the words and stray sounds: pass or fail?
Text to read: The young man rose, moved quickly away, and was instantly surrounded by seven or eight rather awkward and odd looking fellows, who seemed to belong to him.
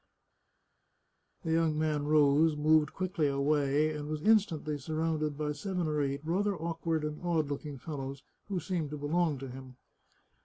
pass